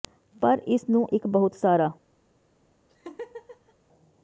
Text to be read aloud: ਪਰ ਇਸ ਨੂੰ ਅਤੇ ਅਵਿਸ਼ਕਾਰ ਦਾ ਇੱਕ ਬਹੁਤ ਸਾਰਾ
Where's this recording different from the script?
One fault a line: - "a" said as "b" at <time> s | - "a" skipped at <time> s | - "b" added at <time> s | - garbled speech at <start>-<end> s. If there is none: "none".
- "ਅਤੇ ਅਵਿਸ਼ਕਾਰ ਦਾ" skipped at 1.1 s